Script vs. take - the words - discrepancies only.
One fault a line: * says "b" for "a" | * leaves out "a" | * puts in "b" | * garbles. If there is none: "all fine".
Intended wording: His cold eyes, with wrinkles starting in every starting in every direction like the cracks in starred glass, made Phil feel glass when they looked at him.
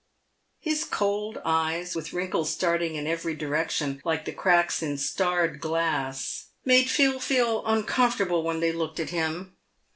* leaves out "starting in every"
* says "uncomfortable" for "glass"